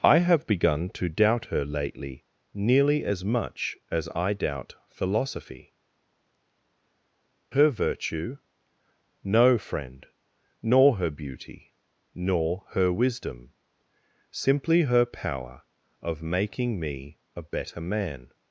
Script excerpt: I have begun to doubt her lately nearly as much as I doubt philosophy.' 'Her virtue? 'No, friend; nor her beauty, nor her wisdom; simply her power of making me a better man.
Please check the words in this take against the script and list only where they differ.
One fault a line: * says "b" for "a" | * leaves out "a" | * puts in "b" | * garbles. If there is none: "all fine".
all fine